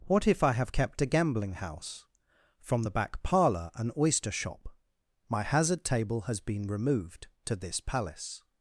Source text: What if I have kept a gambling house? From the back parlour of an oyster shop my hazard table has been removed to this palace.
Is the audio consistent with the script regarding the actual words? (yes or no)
no